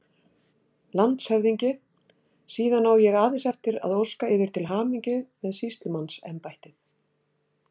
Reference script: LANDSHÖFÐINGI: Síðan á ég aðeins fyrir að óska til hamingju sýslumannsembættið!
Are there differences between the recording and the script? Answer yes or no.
yes